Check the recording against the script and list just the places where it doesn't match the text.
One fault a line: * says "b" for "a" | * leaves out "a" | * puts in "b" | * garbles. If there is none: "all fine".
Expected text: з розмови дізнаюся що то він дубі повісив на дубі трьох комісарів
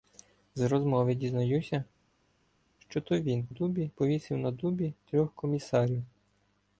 all fine